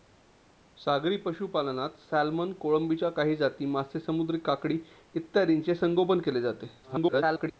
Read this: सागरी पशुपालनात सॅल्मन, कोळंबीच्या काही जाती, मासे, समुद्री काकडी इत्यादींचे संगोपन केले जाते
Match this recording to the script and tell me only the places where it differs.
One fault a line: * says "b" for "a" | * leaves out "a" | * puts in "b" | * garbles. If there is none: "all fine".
* garbles